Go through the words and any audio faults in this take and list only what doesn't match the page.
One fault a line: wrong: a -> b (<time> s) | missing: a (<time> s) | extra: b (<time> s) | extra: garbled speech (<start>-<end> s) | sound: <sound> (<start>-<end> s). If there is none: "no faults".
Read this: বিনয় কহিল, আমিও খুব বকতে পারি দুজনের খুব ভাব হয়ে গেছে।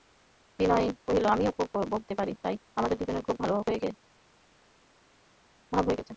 extra: তাই আমাদের (2.4 s)